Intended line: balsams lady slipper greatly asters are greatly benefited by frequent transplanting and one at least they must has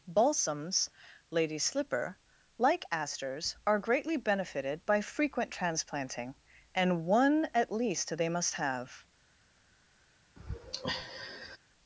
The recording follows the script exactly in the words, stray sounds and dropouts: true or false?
false